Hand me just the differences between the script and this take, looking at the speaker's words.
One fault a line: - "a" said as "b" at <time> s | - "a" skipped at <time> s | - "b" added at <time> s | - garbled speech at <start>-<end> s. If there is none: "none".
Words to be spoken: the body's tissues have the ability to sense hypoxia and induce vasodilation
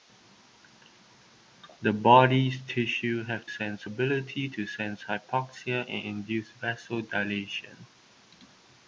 - "the" said as "sense" at 3.5 s